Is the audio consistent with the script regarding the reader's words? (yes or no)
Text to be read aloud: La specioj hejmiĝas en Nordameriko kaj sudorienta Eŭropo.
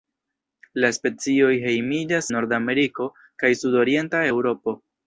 no